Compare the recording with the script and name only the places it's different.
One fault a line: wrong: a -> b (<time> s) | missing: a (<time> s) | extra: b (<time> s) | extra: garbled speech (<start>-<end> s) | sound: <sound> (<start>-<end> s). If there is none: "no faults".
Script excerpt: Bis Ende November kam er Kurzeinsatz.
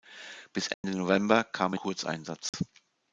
sound: dropout (0.7-0.8 s)
sound: dropout (2.5-2.5 s)